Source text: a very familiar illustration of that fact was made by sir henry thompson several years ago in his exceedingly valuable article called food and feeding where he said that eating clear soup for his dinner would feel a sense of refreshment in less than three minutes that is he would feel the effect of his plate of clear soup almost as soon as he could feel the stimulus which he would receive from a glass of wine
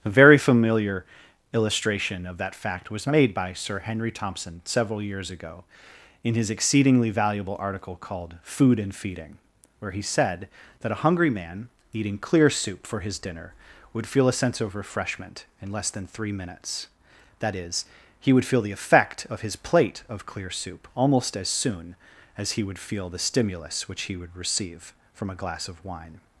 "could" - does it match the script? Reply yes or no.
no